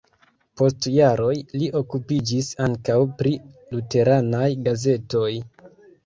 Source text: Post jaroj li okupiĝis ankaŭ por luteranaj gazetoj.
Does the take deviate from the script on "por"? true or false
true